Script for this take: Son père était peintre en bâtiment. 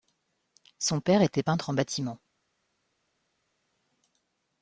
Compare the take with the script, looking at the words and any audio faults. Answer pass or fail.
pass